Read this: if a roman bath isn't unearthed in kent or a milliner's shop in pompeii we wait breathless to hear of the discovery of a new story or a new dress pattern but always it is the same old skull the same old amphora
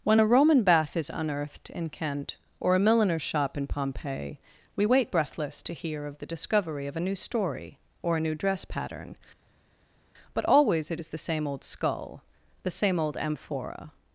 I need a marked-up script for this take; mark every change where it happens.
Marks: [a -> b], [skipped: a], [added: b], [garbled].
[if -> when] a roman bath [isn't -> is] unearthed in kent or a milliner's shop in pompeii we wait breathless to hear of the discovery of a new story or a new dress pattern but always it is the same old skull the same old amphora